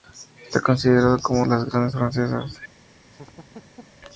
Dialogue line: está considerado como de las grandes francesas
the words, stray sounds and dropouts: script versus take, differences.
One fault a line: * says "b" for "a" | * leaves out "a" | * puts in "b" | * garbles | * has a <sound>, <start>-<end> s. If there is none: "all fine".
* has a laugh, 3.1-4.0 s